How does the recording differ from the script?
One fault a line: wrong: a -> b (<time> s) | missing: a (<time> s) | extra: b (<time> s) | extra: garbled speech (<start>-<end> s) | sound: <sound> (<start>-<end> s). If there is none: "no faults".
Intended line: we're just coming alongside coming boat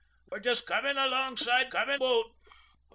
sound: dropout (0.3-0.3 s)